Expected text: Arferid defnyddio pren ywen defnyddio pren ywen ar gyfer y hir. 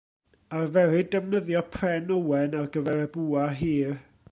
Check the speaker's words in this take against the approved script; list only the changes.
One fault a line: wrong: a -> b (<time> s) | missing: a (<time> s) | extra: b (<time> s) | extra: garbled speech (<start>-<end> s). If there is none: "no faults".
missing: defnyddio pren ywen (2.6 s)
extra: bwa (3.2 s)